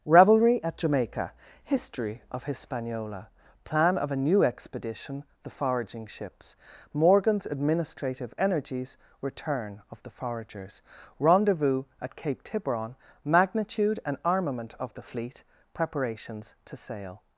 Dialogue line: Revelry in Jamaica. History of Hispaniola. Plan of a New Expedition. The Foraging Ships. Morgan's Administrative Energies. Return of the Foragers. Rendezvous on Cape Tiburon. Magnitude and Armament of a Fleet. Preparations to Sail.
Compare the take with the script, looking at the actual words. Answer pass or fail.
fail